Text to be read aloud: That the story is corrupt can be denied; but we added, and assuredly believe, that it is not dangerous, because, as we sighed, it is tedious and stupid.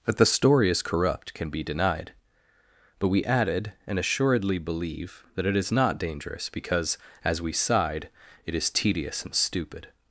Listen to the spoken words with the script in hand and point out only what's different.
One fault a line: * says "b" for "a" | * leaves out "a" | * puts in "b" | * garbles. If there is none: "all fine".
all fine